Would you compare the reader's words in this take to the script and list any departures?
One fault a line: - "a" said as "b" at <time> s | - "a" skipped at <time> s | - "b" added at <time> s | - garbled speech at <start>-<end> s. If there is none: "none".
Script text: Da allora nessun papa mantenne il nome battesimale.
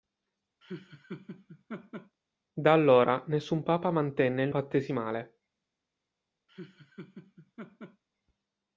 - "nome" skipped at 4.5 s